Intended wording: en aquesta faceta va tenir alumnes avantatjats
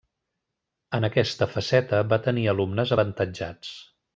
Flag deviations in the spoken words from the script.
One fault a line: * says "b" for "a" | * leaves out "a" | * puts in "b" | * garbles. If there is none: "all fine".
all fine